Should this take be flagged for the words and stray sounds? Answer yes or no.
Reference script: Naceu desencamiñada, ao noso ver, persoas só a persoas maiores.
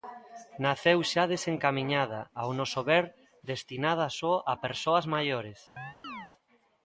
yes